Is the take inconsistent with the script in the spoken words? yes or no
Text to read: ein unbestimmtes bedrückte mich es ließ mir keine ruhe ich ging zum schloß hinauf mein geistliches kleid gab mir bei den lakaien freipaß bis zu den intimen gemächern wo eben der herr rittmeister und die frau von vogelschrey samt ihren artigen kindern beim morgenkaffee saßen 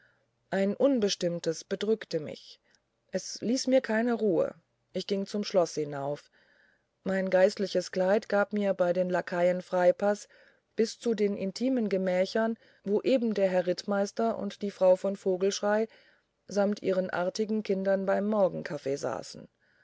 no